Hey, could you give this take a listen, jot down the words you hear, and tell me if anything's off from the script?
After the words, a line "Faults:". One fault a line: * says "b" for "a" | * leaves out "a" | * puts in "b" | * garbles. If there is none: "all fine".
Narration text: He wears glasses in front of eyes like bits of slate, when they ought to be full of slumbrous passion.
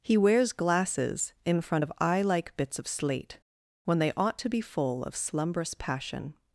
He wears glasses in front of eye like bits of slate, when they ought to be full of slumbrous passion.
Faults:
* says "eye" for "eyes"